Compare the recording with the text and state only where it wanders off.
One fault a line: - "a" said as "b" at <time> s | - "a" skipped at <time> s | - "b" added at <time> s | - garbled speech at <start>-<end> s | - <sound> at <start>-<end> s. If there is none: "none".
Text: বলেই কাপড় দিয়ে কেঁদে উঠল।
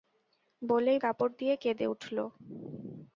none